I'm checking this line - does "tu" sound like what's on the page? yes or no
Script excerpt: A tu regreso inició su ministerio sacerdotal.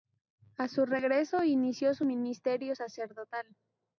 no